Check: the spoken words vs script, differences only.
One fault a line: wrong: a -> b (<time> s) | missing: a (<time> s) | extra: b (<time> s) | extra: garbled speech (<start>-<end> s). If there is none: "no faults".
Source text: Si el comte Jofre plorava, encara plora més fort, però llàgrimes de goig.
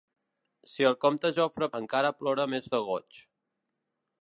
missing: plorava (1.7 s)
missing: fort però llàgrimes (2.7 s)